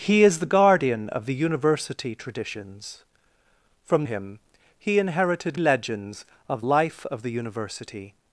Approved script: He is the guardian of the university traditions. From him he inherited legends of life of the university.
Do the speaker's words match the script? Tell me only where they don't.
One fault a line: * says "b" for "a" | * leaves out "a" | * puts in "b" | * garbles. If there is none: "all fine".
all fine